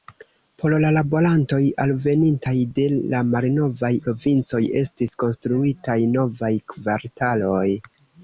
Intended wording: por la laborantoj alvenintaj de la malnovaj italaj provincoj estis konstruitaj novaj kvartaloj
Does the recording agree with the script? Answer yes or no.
no